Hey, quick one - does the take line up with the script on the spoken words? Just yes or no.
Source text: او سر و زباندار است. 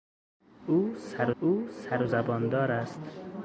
no